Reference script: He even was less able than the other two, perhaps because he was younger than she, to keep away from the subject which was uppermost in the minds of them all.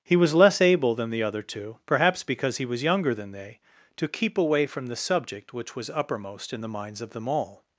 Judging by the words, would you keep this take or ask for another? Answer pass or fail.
fail